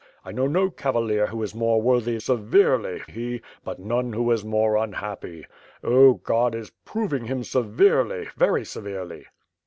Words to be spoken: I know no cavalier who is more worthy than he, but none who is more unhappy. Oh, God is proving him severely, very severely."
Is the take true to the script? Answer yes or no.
no